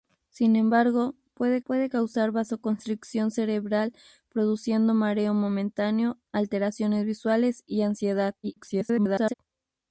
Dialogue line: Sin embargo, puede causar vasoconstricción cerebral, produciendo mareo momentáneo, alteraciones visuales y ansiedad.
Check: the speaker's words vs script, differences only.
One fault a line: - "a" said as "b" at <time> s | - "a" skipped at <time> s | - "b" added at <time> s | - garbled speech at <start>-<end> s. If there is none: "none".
- "puede" added at 1.6 s
- garbled speech at 8.4-9.3 s